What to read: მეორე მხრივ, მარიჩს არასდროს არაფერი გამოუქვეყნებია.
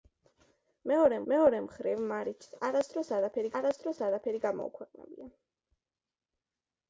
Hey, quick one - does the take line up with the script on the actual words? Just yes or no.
no